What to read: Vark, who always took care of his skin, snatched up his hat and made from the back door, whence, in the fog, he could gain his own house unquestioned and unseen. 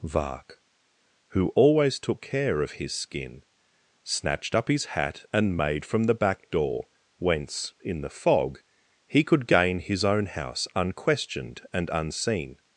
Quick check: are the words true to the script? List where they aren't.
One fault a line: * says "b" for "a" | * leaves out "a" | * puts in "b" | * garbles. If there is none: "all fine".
all fine